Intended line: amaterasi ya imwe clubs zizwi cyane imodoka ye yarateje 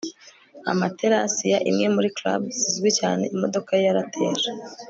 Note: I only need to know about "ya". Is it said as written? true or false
true